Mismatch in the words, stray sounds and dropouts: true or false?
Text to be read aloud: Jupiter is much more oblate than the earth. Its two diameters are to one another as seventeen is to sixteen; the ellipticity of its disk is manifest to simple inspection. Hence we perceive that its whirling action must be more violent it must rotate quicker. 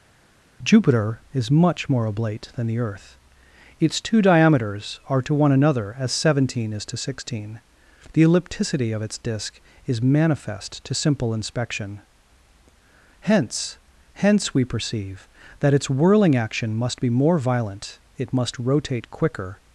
true